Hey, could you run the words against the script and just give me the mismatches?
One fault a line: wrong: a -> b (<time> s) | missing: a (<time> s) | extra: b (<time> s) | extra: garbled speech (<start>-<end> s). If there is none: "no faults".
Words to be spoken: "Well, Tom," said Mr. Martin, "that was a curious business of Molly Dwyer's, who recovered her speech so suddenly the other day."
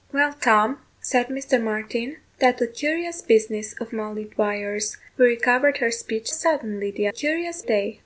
missing: was (2.6 s)
missing: so (6.3 s)
wrong: other -> curious (7.1 s)